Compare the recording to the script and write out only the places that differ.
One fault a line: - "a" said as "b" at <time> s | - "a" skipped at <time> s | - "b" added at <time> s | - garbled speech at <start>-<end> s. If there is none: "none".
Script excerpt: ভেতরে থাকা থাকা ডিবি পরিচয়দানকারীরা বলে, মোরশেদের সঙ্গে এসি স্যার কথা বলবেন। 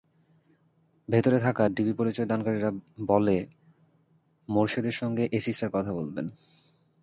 - "থাকা" skipped at 1.6 s